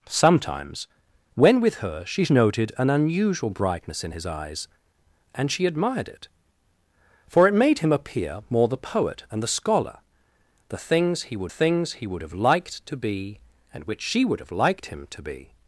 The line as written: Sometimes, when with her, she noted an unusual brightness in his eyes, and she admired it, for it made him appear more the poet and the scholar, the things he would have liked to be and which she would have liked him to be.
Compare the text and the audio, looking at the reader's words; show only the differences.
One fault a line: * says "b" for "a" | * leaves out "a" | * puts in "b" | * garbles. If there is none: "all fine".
* puts in "things he would"